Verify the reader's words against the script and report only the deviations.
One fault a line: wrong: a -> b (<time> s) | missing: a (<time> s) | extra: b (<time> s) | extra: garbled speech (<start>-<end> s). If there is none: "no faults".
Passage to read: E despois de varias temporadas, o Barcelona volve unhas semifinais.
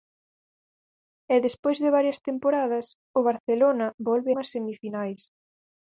no faults